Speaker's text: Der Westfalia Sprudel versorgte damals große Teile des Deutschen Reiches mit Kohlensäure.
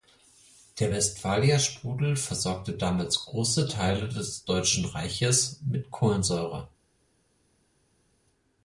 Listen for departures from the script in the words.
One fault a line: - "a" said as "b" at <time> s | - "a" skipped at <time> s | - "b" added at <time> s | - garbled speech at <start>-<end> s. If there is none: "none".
none